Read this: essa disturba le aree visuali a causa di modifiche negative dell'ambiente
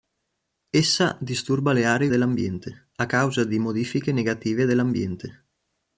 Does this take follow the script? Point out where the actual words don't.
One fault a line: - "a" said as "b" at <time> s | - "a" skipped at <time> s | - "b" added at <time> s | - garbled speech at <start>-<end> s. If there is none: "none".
- "visuali" said as "dell'ambiente" at 2.1 s